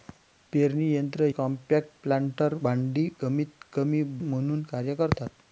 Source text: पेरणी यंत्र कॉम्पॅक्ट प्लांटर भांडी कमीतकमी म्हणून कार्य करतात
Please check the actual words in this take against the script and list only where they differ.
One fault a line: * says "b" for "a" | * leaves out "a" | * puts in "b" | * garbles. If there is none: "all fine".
all fine